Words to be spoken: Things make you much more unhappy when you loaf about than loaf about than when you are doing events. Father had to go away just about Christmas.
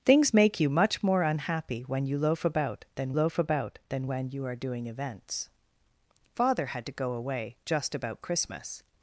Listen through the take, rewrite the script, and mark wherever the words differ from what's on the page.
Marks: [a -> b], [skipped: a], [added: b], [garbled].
Things make you much more unhappy when you loaf about than loaf about than when you are doing events. Father had to go away just about Christmas.